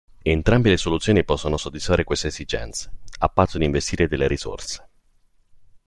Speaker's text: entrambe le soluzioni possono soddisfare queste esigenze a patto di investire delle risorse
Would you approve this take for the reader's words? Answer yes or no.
yes